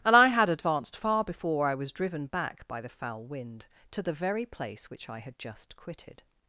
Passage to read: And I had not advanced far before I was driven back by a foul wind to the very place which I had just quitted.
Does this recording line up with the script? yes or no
no